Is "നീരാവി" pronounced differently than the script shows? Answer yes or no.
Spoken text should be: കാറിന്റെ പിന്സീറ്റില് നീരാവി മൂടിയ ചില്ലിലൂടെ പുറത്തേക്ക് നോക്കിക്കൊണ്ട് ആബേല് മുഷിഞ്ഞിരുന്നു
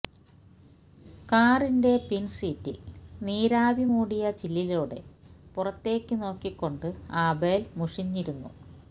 no